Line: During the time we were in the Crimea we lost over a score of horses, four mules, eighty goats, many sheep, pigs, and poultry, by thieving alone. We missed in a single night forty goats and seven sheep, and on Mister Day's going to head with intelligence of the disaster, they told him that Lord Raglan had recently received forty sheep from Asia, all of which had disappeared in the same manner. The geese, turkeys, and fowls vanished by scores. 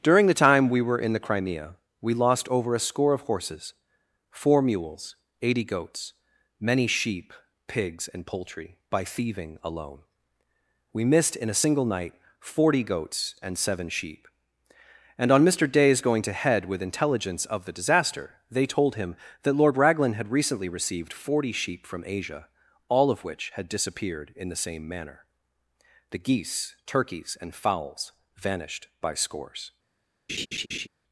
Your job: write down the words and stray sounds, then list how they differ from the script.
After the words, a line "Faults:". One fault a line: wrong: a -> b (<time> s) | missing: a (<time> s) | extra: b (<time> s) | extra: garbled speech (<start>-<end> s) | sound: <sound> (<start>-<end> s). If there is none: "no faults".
During the time we were in the Crimea we lost over a score of horses, four mules, eighty goats, many sheep, pigs, and poultry, by thieving alone. We missed in a single night forty goats and seven sheep, and on Mister Day's going to head with intelligence of the disaster, they told him that Lord Raglan had recently received forty sheep from Asia, all of which had disappeared in the same manner. The geese, turkeys, and fowls vanished by scores.
Faults:
sound: laugh (30.3-30.9 s)